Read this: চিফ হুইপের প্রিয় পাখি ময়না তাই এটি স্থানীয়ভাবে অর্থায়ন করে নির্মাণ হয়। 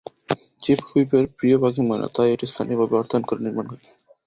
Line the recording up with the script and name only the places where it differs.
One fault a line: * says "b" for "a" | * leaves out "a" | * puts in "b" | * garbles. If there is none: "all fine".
all fine